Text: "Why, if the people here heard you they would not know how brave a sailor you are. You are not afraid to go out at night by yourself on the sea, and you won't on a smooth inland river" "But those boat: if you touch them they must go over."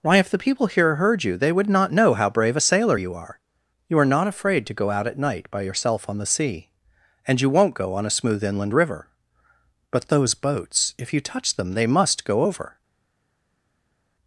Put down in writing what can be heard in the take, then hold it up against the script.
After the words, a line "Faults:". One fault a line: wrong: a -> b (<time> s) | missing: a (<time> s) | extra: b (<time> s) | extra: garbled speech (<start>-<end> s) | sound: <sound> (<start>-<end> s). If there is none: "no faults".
"Why, if the people here heard you they would not know how brave a sailor you are. You are not afraid to go out at night by yourself on the sea, and you won't go on a smooth inland river" "But those boats: if you touch them they must go over."
Faults:
extra: go (7.7 s)
wrong: boat -> boats (10.3 s)